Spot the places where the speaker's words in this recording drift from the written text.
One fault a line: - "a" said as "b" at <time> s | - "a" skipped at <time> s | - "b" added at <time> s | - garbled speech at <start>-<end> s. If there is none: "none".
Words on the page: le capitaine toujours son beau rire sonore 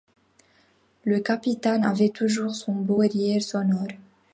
- "avait" added at 1.8 s